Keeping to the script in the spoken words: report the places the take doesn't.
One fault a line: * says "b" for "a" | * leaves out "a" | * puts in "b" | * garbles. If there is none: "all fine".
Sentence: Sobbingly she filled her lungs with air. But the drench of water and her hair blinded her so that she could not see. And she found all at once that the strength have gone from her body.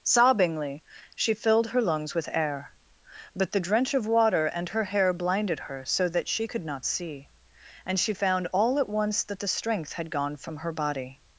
* says "had" for "have"